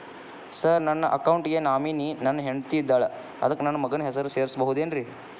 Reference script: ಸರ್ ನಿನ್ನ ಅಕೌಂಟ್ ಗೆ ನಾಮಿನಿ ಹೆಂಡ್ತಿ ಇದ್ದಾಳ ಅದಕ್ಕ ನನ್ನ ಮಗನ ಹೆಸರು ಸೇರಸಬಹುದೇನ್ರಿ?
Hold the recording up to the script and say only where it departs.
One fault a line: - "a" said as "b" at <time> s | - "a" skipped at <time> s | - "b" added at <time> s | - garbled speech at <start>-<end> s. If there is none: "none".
- "ನಿನ್ನ" said as "ನನ್ನ" at 0.8 s
- "ನನ್ನ" added at 2.2 s